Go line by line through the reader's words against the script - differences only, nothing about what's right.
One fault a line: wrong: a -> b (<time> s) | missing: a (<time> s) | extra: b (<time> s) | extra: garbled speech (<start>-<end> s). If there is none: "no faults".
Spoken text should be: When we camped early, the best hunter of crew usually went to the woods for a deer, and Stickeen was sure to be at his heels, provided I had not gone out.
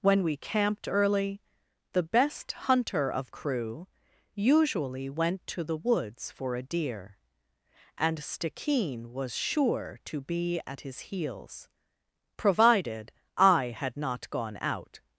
no faults